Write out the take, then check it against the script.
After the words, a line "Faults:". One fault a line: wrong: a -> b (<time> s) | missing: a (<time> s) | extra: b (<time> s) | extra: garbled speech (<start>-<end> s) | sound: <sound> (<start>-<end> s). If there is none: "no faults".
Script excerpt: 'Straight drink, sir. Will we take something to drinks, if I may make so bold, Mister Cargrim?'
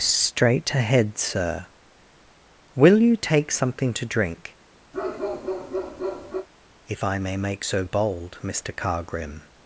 'Straight ahead, sir. Will you take something to drink, if I may make so bold, Mister Cargrim?'
Faults:
wrong: drink -> ahead (0.7 s)
wrong: we -> you (3.0 s)
wrong: drinks -> drink (4.0 s)
sound: bark (4.9-6.5 s)